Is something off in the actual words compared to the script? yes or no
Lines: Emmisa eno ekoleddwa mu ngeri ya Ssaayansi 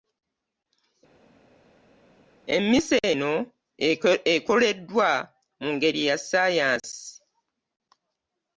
no